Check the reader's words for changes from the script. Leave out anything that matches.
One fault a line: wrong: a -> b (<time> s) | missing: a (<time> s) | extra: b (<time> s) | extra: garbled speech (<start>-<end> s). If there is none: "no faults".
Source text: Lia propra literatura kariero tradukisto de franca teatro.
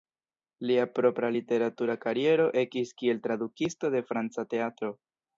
extra: ekis kiel (2.6 s)